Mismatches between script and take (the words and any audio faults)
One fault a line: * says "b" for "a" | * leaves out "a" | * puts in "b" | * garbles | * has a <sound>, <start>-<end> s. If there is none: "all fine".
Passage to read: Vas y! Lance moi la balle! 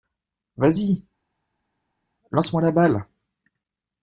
all fine